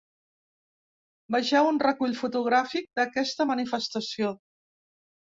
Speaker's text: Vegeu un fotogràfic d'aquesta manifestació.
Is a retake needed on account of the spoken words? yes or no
yes